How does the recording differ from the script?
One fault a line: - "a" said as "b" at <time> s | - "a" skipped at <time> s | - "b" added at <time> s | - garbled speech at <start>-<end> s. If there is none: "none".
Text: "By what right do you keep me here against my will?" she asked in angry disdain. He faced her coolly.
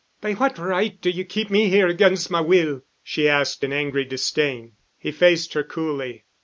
none